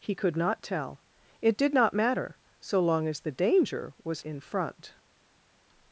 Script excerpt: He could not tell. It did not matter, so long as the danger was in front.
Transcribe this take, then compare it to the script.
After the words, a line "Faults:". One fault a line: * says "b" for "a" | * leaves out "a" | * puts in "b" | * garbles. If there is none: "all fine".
He could not tell. It did not matter, so long as the danger was in front.
Faults:
all fine